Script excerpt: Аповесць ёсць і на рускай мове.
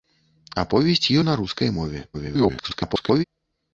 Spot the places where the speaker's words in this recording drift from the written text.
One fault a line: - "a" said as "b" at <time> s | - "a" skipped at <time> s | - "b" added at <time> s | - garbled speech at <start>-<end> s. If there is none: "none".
- "ёсць" skipped at 1.1 s
- garbled speech at 2.1-3.2 s